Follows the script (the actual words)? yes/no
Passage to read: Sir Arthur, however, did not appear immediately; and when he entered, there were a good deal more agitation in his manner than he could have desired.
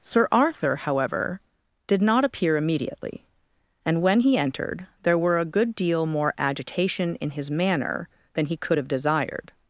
yes